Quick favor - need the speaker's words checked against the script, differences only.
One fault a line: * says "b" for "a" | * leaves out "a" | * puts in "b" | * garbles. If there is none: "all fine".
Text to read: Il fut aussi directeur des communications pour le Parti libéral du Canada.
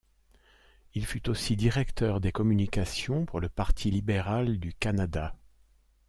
all fine